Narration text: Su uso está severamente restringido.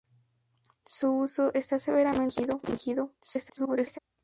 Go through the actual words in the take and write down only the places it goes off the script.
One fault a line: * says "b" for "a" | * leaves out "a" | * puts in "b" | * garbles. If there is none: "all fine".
* garbles